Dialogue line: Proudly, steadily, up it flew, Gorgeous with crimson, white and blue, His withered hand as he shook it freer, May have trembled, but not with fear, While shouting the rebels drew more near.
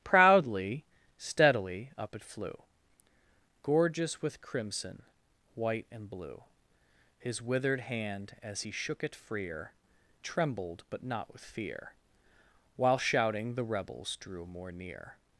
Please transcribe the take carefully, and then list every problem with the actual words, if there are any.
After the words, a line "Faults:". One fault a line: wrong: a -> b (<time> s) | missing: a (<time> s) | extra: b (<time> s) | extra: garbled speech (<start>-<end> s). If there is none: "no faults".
Proudly, steadily, up it flew, Gorgeous with crimson, white and blue, His withered hand as he shook it freer, Trembled, but not with fear, While shouting the rebels drew more near.
Faults:
missing: May have (9.7 s)